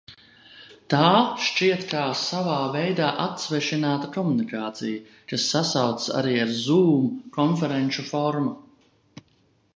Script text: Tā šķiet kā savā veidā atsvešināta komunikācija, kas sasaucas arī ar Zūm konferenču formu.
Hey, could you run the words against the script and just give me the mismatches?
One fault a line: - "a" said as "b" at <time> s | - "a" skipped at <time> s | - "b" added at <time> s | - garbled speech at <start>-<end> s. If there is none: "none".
none